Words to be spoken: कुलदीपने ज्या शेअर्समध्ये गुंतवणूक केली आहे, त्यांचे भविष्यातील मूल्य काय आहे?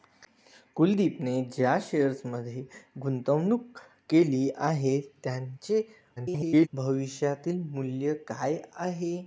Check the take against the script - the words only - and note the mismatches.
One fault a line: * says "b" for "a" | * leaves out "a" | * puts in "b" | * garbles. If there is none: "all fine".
* garbles